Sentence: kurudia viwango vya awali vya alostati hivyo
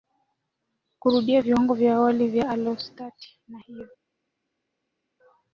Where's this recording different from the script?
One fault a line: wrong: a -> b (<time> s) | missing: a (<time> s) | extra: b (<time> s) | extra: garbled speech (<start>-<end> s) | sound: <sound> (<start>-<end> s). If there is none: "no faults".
extra: na (3.5 s)